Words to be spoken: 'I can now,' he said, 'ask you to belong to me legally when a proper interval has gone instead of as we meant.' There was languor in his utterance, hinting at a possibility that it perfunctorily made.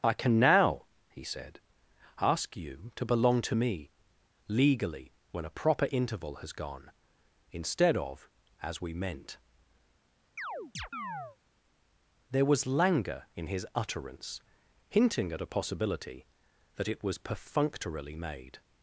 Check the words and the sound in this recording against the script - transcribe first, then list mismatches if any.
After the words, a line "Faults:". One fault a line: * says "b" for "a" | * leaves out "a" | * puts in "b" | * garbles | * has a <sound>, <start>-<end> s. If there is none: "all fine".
'I can now,' he said, 'ask you to belong to me legally when a proper interval has gone instead of as we meant.' There was languor in his utterance, hinting at a possibility that it was perfunctorily made.
Faults:
* has a chirp, 10.4-11.4 s
* puts in "was"